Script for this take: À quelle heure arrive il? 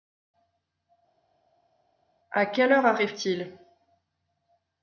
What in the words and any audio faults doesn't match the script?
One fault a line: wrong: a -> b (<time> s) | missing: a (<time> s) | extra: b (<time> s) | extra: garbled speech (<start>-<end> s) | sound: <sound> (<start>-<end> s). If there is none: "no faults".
extra: t (3.1 s)